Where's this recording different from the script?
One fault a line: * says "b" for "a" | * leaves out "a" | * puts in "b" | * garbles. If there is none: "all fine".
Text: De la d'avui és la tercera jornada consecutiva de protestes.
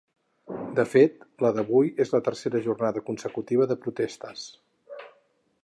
* puts in "fet"